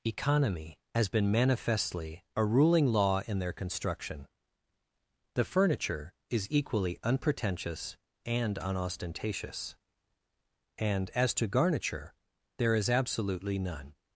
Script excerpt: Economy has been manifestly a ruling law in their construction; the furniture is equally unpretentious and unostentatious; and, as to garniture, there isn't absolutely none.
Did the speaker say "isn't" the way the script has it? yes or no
no